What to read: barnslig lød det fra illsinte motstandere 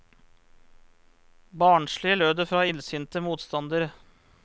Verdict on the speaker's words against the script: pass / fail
pass